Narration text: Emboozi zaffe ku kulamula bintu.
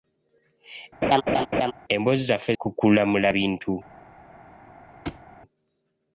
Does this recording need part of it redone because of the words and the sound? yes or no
yes